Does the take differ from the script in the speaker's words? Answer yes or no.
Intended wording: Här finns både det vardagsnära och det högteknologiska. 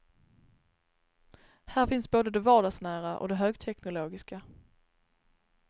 no